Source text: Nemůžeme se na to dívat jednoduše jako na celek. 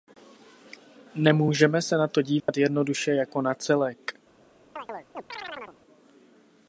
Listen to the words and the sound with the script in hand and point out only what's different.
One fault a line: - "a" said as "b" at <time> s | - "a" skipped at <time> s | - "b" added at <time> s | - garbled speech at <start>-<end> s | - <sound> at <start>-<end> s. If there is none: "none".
- dropout at 2.4-2.5 s
- chirp at 4.8-5.8 s